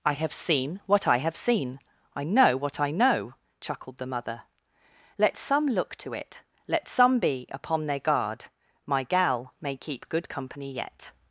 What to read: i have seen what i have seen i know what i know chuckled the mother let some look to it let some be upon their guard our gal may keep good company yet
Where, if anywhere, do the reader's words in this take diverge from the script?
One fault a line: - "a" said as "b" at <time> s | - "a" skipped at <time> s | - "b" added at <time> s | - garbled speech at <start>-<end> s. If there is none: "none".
- "our" said as "my" at 8.9 s